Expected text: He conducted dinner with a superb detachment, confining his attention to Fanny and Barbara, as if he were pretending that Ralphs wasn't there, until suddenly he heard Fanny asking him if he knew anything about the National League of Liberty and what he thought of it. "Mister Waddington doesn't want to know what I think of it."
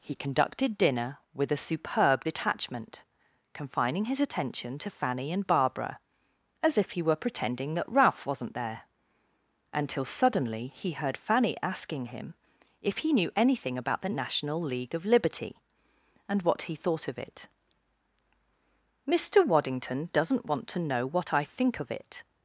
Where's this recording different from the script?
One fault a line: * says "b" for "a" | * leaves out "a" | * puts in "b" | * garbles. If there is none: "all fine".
* says "Ralph" for "Ralphs"